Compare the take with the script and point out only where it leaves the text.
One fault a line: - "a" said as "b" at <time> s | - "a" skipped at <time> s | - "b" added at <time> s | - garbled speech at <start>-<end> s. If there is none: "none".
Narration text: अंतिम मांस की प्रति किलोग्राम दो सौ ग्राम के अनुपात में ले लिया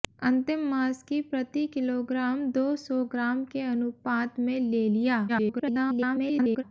- garbled speech at 5.3-6.6 s